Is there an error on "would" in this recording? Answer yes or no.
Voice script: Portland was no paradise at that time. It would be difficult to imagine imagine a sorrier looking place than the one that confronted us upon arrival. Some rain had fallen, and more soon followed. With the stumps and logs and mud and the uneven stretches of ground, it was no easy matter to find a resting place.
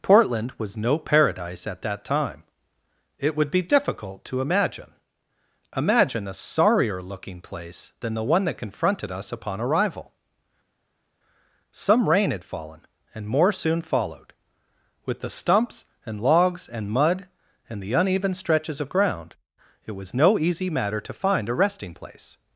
no